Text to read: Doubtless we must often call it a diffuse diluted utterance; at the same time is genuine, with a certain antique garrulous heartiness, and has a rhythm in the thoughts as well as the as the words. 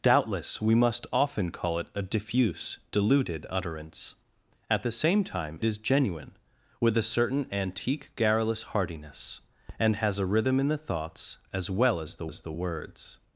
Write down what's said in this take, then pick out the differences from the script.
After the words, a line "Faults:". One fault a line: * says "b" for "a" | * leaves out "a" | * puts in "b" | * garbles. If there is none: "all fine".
Doubtless we must often call it a diffuse diluted utterance; at the same time is genuine, with a certain antique garrulous heartiness, and has a rhythm in the thoughts as well as the as the words.
Faults:
all fine